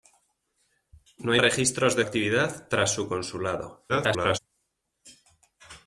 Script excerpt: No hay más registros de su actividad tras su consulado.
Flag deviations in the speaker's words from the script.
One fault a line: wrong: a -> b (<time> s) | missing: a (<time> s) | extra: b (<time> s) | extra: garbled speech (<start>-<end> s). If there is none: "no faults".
missing: más (1.4 s)
missing: su (2.0 s)
extra: garbled speech (3.9-4.4 s)